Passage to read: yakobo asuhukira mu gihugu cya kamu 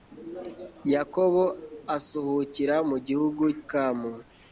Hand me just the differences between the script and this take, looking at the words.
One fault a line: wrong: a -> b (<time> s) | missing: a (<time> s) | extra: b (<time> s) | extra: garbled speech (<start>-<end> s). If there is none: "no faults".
missing: cya (3.4 s)